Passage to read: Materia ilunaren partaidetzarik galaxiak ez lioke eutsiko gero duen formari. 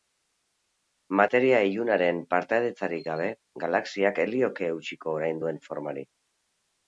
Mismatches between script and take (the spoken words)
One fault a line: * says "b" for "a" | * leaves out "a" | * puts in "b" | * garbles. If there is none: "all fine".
* puts in "gabe"
* says "orain" for "gero"